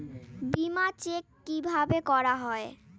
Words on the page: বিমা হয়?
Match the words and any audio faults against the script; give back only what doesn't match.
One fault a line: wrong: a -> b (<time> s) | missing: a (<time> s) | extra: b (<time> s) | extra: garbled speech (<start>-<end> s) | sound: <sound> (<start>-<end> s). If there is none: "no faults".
extra: চেক কিভাবে করা (1.0 s)